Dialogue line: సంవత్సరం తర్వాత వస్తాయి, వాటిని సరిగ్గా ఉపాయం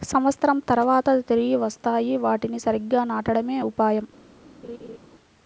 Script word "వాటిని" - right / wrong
right